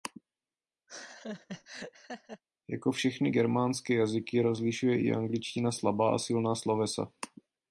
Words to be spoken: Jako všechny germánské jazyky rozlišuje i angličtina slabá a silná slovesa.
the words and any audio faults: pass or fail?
fail